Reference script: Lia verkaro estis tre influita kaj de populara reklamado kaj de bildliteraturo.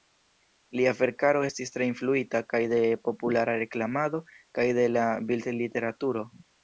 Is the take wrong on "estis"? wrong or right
right